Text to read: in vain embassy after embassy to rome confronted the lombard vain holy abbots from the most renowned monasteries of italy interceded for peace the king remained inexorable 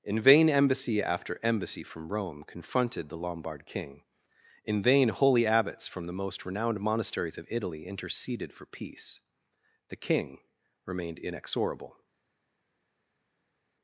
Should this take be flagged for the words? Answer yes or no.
yes